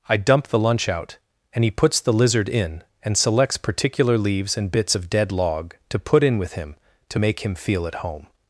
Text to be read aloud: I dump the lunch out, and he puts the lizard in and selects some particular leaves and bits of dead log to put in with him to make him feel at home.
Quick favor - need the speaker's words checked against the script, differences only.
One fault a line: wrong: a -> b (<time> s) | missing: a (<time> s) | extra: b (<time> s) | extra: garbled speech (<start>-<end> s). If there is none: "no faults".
missing: some (3.6 s)